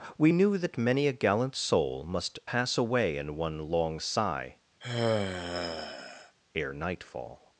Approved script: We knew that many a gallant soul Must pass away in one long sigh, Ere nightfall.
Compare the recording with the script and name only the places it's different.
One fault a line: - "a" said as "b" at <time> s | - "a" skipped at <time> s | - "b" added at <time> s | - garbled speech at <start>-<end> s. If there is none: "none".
none